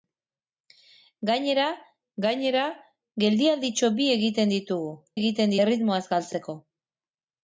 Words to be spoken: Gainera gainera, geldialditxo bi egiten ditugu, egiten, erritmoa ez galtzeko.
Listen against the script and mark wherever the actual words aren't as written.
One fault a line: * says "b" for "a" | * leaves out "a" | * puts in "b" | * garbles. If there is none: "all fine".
all fine